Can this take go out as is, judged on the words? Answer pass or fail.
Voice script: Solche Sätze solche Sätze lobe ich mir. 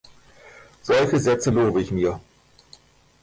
fail